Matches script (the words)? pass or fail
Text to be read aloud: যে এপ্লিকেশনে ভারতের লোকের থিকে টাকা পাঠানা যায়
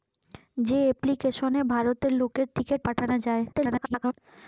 fail